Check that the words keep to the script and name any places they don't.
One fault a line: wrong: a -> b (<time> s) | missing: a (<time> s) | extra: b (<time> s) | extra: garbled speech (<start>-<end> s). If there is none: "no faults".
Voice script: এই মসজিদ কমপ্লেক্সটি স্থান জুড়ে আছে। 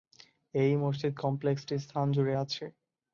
no faults